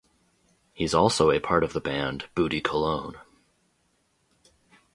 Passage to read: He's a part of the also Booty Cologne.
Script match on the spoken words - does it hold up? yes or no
no